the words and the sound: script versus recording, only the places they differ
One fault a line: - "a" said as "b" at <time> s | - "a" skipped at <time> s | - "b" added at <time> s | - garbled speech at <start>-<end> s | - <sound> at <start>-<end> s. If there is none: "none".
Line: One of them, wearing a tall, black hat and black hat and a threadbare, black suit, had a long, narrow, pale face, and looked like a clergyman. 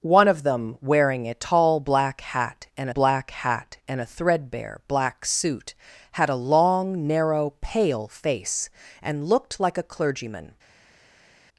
none